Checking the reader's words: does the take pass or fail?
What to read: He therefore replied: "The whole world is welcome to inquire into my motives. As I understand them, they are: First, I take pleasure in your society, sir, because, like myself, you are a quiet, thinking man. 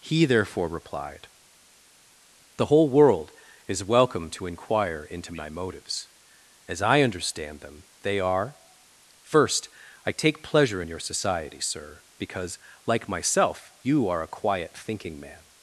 pass